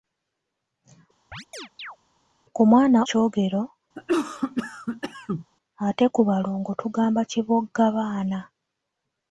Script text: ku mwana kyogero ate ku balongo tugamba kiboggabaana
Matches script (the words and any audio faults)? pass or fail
fail